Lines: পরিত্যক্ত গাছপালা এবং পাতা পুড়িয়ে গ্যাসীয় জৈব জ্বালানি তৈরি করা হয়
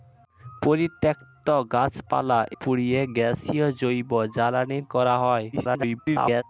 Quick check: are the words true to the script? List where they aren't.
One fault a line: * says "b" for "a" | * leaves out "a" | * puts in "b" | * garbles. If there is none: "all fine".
* leaves out "এবং পাতা"
* leaves out "তৈরি"
* garbles